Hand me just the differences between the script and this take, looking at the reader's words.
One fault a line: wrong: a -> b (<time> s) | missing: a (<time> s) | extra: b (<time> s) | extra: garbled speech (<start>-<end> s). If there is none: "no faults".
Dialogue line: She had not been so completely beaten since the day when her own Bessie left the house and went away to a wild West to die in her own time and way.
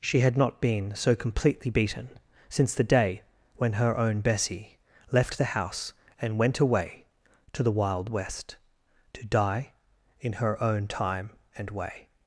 wrong: a -> the (7.6 s)